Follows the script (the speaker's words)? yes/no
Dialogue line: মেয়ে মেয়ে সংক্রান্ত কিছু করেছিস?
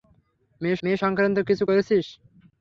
yes